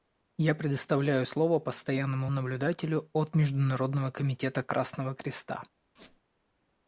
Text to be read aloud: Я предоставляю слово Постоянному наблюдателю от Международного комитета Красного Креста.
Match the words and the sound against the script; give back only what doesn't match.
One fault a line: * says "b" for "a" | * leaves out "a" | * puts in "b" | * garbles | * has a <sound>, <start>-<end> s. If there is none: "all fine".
* has a squeak, 6.0-6.2 s